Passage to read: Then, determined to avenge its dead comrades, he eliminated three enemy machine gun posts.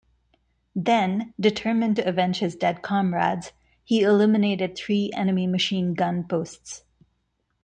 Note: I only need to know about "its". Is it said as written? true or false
false